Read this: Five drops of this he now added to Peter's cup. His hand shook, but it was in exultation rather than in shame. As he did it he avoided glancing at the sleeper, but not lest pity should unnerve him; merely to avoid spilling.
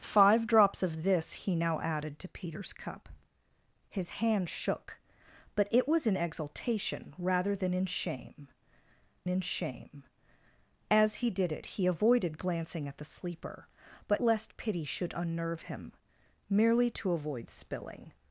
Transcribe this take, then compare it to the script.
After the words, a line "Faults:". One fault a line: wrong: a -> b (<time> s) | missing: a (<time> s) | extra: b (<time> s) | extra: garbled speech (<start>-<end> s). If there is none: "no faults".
Five drops of this he now added to Peter's cup. His hand shook, but it was in exultation rather than in shame in shame. As he did it he avoided glancing at the sleeper, but lest pity should unnerve him; merely to avoid spilling.
Faults:
extra: in shame (9.3 s)
missing: not (14.2 s)